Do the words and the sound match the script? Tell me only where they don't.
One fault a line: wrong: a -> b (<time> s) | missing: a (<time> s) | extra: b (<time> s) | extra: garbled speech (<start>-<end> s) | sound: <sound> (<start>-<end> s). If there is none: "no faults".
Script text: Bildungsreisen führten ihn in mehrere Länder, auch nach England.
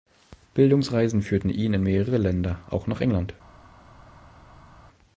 no faults